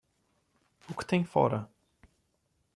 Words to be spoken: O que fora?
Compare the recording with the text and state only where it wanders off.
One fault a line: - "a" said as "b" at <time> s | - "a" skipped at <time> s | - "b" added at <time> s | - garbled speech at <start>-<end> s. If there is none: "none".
- "tem" added at 1.1 s